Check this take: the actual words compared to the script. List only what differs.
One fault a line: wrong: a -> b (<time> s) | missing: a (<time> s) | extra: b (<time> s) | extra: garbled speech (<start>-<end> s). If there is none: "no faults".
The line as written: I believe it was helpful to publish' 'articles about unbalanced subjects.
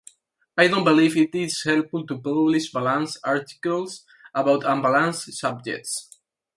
extra: don't (0.7 s)
wrong: was -> is (1.4 s)
extra: balanced (2.7 s)